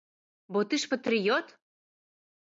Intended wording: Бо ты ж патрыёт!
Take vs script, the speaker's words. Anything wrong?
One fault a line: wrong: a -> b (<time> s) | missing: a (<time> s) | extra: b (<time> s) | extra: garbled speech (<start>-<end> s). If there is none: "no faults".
no faults